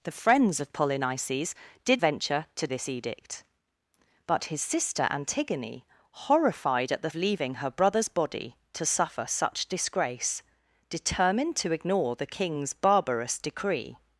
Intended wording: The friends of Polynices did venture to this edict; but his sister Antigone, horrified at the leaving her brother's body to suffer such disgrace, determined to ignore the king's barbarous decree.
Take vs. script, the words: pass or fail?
pass